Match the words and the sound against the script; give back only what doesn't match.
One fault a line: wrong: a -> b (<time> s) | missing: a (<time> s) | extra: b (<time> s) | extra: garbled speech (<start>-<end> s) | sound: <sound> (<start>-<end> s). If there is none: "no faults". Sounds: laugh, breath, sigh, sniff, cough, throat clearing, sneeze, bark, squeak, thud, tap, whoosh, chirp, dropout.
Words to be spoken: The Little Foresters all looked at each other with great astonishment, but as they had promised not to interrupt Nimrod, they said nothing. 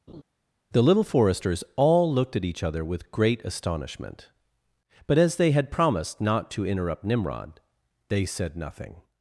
sound: laugh (0.1-0.2 s)